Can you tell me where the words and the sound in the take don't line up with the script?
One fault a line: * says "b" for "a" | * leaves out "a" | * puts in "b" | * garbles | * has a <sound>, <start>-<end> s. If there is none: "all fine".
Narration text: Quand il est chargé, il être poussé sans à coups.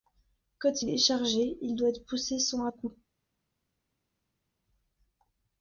* puts in "doit"